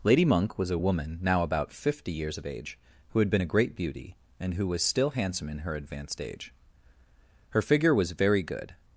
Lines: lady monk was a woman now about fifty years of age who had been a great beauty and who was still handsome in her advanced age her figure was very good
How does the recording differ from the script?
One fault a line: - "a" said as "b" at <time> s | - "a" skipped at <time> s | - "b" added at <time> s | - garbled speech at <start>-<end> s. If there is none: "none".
none